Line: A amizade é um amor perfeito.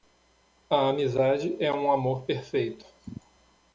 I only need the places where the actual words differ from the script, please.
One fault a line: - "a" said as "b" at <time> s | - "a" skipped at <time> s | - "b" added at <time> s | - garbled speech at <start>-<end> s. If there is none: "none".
none